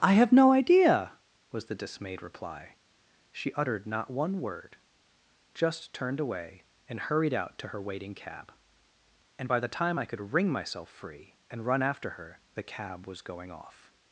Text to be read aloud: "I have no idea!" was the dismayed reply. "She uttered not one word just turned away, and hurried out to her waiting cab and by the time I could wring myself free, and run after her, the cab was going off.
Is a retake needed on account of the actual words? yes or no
no